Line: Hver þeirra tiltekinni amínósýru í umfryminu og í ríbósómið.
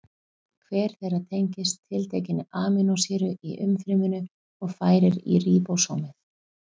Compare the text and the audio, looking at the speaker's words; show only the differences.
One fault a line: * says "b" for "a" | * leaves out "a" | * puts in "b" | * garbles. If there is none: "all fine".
* puts in "tengist"
* puts in "færir"